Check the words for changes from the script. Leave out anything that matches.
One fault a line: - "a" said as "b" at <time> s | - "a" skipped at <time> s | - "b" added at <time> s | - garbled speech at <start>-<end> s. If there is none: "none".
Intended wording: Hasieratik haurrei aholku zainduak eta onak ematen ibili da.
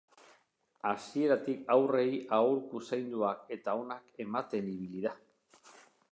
none